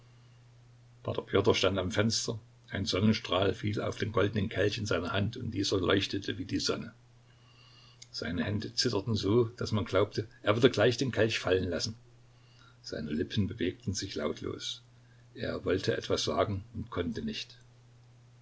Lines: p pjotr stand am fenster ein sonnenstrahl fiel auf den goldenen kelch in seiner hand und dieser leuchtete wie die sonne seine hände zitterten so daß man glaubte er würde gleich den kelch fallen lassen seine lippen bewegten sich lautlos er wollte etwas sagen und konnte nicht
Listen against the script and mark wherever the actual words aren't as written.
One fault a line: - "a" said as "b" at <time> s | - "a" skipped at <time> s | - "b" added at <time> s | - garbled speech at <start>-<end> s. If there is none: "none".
none